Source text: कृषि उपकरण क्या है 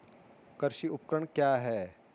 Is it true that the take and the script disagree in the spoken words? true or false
false